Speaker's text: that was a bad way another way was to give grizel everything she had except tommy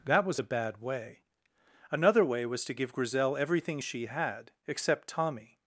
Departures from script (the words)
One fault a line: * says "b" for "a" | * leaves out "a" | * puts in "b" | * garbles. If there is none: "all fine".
all fine